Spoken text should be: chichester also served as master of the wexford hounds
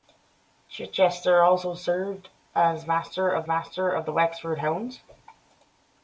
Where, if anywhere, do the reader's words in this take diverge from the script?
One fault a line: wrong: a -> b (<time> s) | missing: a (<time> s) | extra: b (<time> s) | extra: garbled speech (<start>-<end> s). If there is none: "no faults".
extra: master of (3.5 s)